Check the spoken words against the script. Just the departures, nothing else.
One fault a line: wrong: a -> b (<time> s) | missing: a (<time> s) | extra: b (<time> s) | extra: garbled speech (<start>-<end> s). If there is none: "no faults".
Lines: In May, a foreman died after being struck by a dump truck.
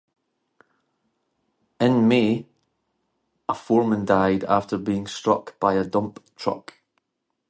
no faults